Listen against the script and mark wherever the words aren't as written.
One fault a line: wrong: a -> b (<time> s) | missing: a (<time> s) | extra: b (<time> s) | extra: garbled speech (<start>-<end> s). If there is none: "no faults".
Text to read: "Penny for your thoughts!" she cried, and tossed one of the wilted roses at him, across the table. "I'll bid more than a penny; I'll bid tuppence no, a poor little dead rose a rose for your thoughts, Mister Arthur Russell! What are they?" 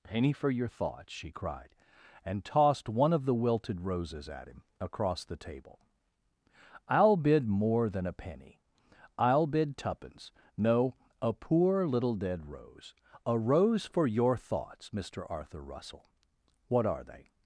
no faults